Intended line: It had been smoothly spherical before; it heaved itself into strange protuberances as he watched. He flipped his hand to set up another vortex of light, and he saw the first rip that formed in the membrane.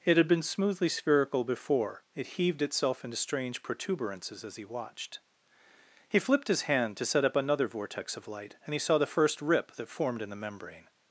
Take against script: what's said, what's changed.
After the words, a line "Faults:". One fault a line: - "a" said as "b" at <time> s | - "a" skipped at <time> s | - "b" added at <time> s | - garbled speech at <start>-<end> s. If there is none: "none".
It had been smoothly spherical before; it heaved itself into strange protuberances as he watched. He flipped his hand to set up another vortex of light, and he saw the first rip that formed in the membrane.
Faults:
none